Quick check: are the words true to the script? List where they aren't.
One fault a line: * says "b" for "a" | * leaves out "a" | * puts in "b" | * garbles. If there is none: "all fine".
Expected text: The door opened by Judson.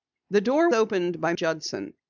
all fine